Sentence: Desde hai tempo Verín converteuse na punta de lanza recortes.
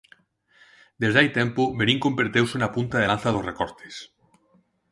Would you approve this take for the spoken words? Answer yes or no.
no